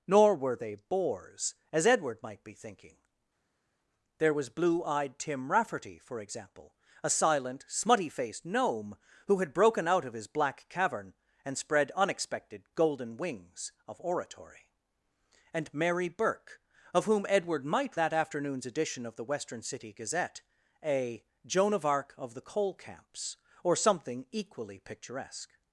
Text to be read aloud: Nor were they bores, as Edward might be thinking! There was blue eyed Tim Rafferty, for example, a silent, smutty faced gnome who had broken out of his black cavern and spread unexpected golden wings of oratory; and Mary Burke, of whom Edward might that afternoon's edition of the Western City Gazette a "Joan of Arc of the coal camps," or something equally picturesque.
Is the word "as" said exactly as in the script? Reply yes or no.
yes